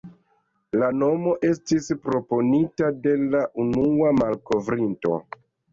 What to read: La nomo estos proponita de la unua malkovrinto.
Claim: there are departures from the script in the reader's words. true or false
true